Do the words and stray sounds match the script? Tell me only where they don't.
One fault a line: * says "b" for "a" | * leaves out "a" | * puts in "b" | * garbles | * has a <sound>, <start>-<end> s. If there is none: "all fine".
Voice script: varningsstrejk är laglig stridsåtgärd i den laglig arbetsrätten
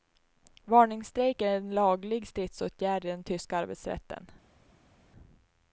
* puts in "en"
* says "tyska" for "laglig"